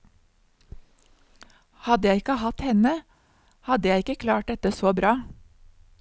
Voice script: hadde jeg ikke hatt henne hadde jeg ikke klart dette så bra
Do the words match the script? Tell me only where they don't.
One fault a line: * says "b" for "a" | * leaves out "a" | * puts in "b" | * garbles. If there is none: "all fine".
all fine